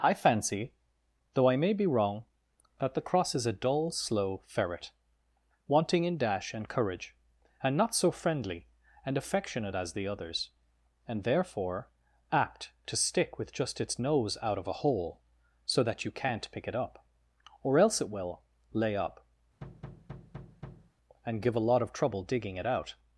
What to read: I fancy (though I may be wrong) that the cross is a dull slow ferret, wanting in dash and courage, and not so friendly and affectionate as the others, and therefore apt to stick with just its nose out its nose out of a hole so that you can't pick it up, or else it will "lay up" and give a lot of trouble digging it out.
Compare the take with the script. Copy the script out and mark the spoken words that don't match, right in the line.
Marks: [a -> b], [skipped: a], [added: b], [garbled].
I fancy (though I may be wrong) that the cross is a dull slow ferret, wanting in dash and courage, and not so friendly and affectionate as the others, and therefore apt to stick with just its nose out [skipped: its nose out] of a hole so that you can't pick it up, or else it will "lay up" and give a lot of trouble digging it out.